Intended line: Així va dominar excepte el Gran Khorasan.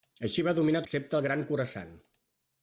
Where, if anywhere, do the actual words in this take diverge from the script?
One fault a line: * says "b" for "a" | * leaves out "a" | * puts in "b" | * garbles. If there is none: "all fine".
all fine